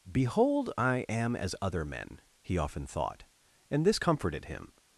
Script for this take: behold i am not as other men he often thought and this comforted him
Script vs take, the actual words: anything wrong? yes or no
yes